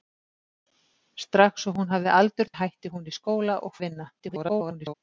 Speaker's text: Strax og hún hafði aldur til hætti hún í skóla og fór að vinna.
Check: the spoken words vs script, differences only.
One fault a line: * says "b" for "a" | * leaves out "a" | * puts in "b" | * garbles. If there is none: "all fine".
* leaves out "til"
* leaves out "fór"
* garbles